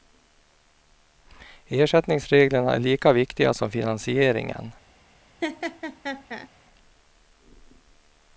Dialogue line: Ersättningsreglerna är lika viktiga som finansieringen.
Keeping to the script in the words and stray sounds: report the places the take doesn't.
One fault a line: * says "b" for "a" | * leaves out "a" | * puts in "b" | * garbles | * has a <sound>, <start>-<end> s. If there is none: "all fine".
* has a laugh, 5.4-6.5 s